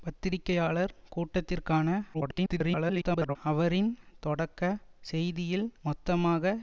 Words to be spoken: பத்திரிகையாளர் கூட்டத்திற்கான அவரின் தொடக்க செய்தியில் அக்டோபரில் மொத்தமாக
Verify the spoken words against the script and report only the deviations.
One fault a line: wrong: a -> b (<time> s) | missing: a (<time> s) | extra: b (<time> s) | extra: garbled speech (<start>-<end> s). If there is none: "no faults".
extra: garbled speech (2.1-3.4 s)
missing: அக்டோபரில் (5.7 s)